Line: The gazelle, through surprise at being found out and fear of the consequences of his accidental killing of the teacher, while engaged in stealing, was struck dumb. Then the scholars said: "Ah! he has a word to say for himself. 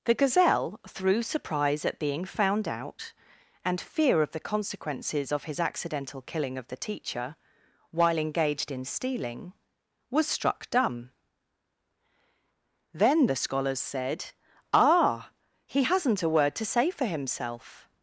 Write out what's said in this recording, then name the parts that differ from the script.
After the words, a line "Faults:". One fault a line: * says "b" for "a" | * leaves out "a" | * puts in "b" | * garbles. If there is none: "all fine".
The gazelle, through surprise at being found out and fear of the consequences of his accidental killing of the teacher, while engaged in stealing, was struck dumb. Then the scholars said: "Ah! he hasn't a word to say for himself.
Faults:
* says "hasn't" for "has"